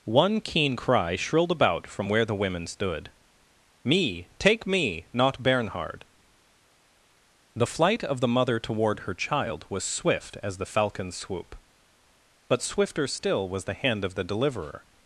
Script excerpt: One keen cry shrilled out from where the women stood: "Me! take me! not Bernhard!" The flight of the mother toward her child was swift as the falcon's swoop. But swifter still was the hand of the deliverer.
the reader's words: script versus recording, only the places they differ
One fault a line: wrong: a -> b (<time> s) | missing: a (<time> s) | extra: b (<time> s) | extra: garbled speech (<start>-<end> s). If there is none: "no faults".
wrong: out -> about (1.5 s)